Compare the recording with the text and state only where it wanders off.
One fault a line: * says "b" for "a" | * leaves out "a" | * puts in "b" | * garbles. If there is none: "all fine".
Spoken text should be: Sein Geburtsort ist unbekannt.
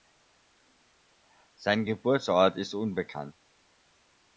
all fine